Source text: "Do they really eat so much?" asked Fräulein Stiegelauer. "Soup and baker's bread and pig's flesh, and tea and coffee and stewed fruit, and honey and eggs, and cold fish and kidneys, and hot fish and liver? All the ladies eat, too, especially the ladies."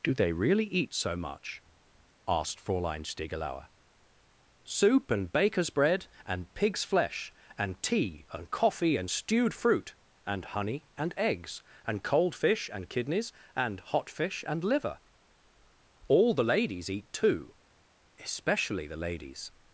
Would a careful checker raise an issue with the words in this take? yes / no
no